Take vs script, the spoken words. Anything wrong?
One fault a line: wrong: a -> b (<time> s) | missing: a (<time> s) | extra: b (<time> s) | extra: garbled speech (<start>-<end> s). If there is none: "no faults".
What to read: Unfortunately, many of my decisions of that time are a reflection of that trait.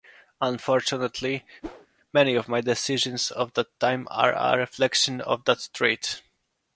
no faults